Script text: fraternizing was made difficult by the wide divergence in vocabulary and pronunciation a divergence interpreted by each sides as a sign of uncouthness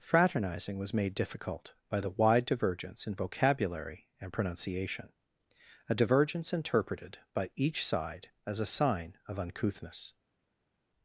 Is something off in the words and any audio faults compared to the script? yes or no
yes